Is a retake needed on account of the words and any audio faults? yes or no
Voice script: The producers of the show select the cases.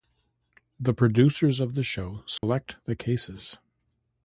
yes